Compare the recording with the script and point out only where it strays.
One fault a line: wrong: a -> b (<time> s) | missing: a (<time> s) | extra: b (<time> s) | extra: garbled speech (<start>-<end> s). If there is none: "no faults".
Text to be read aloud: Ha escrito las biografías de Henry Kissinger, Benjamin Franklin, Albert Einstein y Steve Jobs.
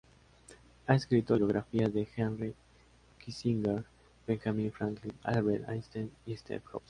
missing: las (1.4 s)